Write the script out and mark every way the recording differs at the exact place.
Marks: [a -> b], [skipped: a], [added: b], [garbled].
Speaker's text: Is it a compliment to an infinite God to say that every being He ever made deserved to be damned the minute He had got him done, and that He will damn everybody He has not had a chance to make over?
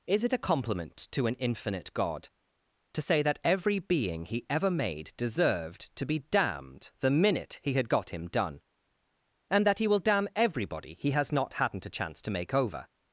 Is it a compliment to an infinite God to say that every being He ever made deserved to be damned the minute He had got him done, and that He will damn everybody He has not [had -> hadn't] a chance to make over?